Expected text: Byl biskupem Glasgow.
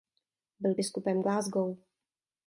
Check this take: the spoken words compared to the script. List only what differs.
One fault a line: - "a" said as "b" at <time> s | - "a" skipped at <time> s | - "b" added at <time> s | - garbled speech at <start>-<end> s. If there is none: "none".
none